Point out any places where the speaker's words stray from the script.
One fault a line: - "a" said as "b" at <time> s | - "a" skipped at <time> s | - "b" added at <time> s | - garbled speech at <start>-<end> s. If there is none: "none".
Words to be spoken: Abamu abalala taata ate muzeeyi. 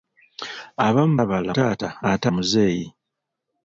none